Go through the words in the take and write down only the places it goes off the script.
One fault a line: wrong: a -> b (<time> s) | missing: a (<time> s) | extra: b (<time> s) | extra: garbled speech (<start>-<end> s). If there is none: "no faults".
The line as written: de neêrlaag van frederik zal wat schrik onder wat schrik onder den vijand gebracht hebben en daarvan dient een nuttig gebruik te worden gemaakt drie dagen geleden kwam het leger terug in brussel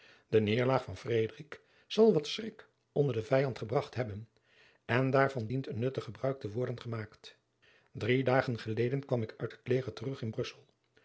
missing: wat schrik onder (3.1 s)
extra: ik uit (9.2 s)